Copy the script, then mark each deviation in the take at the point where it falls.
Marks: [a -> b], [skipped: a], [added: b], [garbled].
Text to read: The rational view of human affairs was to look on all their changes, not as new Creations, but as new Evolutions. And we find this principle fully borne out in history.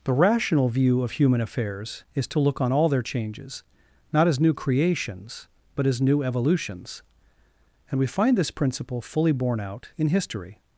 The rational view of human affairs [was -> is] to look on all their changes, not as new Creations, but as new Evolutions. And we find this principle fully borne out in history.